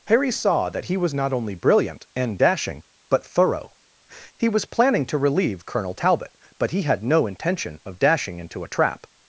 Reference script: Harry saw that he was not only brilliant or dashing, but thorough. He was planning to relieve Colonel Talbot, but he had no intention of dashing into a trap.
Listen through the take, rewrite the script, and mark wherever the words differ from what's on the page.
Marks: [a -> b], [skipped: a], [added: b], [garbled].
Harry saw that he was not only brilliant [or -> and] dashing, but thorough. He was planning to relieve Colonel Talbot, but he had no intention of dashing into a trap.